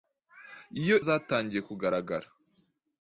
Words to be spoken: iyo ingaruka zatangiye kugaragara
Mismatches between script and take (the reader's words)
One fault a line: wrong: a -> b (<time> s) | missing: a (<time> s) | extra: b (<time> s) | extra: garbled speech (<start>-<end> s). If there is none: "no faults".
missing: ingaruka (1.0 s)